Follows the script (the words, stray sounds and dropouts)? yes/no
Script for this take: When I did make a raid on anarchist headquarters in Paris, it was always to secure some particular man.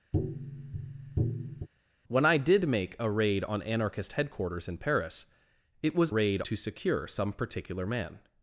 no